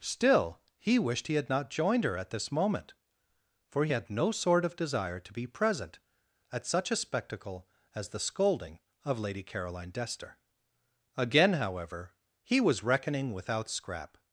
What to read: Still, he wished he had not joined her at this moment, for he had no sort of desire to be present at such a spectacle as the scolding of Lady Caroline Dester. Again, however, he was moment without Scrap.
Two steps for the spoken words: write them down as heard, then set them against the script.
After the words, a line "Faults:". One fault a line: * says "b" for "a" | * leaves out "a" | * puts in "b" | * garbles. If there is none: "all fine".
Still, he wished he had not joined her at this moment, for he had no sort of desire to be present at such a spectacle as the scolding of Lady Caroline Dester. Again, however, he was reckoning without Scrap.
Faults:
* says "reckoning" for "moment"